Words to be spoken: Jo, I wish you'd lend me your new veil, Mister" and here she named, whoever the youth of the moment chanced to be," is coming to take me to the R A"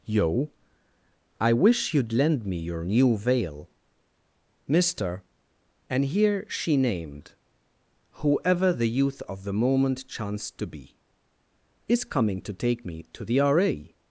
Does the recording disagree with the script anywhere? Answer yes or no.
yes